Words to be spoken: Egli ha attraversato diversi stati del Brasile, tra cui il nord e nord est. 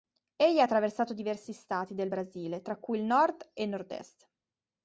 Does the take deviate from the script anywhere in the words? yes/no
no